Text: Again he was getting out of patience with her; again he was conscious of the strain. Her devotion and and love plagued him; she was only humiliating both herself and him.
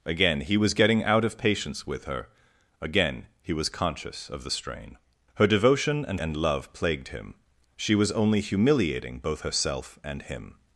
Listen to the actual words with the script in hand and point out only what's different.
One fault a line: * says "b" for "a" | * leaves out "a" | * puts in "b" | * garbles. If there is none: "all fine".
all fine